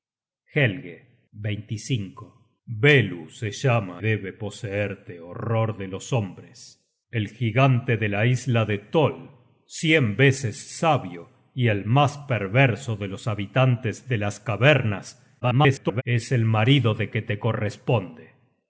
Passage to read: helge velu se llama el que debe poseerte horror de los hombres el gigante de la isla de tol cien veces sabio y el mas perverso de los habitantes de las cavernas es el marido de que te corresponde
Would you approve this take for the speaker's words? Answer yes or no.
no